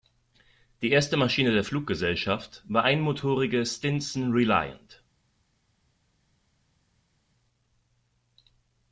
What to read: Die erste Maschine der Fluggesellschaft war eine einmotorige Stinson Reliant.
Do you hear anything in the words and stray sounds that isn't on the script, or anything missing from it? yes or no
yes